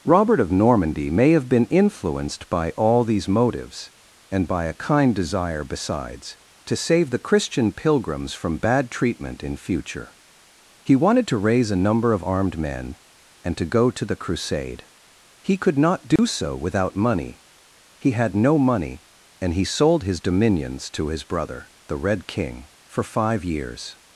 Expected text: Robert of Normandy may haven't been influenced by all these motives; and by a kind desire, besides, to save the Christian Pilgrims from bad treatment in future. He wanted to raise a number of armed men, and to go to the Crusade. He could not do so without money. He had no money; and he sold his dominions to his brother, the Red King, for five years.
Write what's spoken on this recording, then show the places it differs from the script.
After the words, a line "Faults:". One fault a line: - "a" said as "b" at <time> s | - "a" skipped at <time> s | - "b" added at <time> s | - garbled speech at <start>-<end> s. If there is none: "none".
Robert of Normandy may have been influenced by all these motives; and by a kind desire, besides, to save the Christian Pilgrims from bad treatment in future. He wanted to raise a number of armed men, and to go to the Crusade. He could not do so without money. He had no money; and he sold his dominions to his brother, the Red King, for five years.
Faults:
- "haven't" said as "have" at 1.3 s